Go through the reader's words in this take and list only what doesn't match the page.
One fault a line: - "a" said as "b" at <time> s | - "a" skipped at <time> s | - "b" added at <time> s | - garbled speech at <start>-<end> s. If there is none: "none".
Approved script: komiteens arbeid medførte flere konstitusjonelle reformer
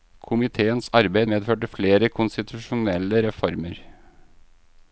none